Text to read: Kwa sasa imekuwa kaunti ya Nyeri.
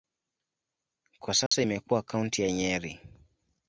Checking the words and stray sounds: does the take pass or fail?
fail